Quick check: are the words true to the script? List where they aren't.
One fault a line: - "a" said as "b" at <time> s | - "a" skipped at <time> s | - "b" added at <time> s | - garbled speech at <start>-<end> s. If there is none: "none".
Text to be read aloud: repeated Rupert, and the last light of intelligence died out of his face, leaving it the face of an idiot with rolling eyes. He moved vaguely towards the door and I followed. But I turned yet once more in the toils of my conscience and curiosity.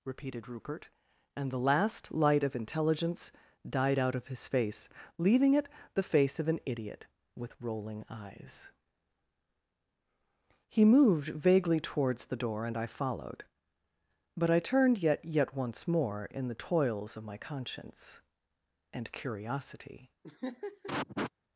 - "yet" added at 15.2 s